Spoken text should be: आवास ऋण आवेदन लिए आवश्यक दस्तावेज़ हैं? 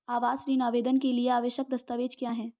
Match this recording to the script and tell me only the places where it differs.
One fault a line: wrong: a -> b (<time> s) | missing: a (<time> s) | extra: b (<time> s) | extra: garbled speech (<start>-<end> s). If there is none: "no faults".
extra: के (1.0 s)
extra: क्या (2.2 s)